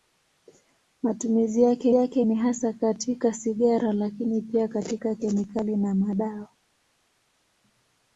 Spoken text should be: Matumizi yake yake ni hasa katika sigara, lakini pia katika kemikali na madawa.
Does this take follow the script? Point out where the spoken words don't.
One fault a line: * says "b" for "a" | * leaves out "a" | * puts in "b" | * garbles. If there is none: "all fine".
all fine